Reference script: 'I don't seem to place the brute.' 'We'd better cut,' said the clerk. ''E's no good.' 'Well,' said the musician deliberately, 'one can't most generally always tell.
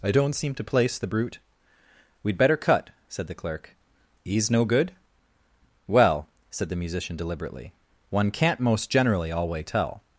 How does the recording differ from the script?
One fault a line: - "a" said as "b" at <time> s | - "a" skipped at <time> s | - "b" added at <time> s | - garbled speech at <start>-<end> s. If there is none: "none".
- "always" said as "alway" at 9.3 s